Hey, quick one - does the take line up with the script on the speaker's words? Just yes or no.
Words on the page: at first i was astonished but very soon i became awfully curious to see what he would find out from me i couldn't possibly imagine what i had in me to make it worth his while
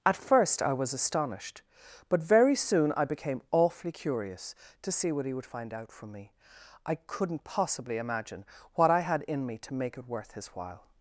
yes